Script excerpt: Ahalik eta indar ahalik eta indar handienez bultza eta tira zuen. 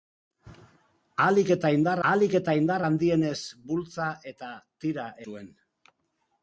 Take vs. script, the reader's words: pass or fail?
pass